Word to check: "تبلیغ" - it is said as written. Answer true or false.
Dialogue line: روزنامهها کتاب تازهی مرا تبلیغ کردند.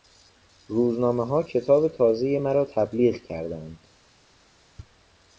true